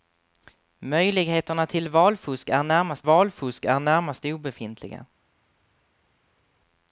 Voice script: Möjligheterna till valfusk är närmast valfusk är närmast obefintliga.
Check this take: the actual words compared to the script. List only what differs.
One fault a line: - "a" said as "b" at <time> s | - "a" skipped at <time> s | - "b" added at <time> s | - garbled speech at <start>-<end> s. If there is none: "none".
none